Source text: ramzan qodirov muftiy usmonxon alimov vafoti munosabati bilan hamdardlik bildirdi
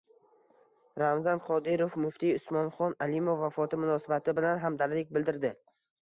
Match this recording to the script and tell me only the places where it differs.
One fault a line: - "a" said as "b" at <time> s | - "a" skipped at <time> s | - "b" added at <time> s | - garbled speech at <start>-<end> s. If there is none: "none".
none